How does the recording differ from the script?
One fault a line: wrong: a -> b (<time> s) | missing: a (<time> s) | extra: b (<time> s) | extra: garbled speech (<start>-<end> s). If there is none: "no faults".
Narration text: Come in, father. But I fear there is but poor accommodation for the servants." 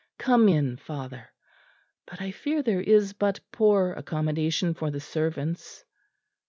no faults